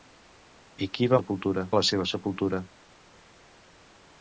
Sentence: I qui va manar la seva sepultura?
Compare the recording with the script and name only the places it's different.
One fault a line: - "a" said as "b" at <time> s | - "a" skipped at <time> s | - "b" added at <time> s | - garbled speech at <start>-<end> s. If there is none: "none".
- "manar" said as "sepultura" at 1.2 s